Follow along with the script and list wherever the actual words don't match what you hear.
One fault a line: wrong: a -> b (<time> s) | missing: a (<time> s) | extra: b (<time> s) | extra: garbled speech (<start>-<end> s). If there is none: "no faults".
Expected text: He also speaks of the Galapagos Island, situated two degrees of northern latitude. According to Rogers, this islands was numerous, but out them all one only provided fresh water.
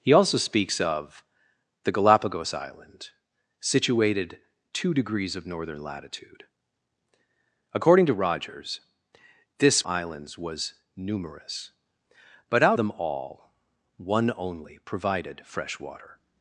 no faults